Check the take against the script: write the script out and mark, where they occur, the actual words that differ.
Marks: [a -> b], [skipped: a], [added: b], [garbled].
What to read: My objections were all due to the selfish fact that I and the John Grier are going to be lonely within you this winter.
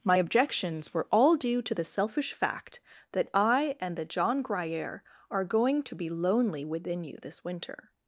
My objections were all due to the selfish fact that I and the John Grier are going to be lonely within you this winter.